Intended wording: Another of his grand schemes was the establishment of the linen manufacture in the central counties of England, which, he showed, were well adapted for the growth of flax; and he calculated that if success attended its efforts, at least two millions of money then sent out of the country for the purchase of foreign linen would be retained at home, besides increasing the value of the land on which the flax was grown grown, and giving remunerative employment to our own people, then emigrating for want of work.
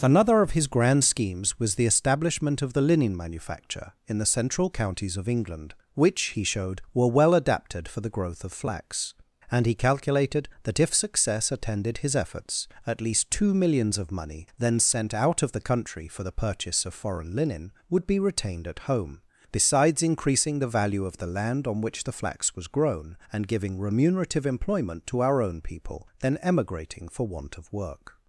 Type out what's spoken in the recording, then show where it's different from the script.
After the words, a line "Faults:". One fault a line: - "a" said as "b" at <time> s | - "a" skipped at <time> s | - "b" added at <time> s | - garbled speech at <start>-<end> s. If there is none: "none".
Another of his grand schemes was the establishment of the linen manufacture in the central counties of England, which, he showed, were well adapted for the growth of flax; and he calculated that if success attended his efforts, at least two millions of money then sent out of the country for the purchase of foreign linen would be retained at home, besides increasing the value of the land on which the flax was grown, and giving remunerative employment to our own people, then emigrating for want of work.
Faults:
- "its" said as "his" at 12.0 s
- "grown" skipped at 23.2 s